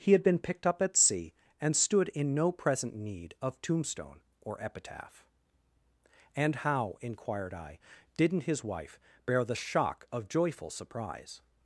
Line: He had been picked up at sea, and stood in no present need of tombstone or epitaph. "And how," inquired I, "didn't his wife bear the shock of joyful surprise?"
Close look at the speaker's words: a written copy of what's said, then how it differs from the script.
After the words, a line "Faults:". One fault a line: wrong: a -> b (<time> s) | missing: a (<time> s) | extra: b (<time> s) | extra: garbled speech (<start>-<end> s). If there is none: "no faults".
He had been picked up at sea, and stood in no present need of tombstone or epitaph. "And how," inquired I, "didn't his wife bear the shock of joyful surprise?"
Faults:
no faults